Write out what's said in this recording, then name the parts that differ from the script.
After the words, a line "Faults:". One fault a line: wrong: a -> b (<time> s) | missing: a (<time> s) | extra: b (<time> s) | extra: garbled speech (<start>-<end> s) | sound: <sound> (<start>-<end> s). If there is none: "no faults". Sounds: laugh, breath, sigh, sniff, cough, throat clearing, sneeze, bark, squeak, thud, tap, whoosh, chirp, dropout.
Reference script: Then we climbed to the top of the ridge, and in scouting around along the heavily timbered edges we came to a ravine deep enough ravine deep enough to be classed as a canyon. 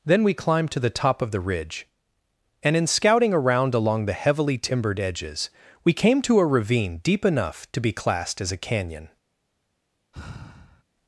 Then we climbed to the top of the ridge, and in scouting around along the heavily timbered edges we came to a ravine deep enough to be classed as a canyon.
Faults:
missing: ravine deep enough (7.7 s)
sound: sigh (10.1-10.8 s)